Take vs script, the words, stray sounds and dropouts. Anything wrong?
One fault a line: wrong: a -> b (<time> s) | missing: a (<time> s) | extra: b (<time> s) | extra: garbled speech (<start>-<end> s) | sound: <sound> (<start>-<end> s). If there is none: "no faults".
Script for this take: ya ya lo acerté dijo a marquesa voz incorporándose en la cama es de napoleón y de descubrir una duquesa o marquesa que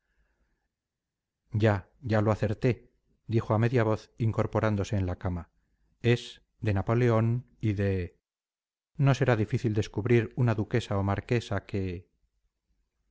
wrong: marquesa -> media (3.6 s)
extra: no será difícil (9.0 s)